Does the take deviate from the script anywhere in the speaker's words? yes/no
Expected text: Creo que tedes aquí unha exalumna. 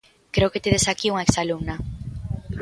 no